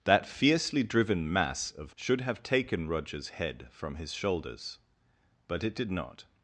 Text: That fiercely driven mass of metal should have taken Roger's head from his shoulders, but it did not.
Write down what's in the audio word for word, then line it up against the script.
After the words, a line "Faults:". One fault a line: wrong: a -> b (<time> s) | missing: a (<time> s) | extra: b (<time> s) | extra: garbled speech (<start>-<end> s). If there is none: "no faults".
That fiercely driven mass of should have taken Roger's head from his shoulders, but it did not.
Faults:
missing: metal (1.9 s)